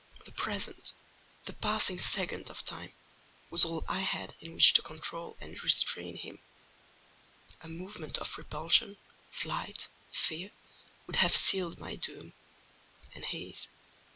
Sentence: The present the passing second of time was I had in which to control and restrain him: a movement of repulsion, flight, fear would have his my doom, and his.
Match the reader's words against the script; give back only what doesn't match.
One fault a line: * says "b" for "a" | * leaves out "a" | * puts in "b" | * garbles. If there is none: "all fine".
* puts in "all"
* says "sealed" for "his"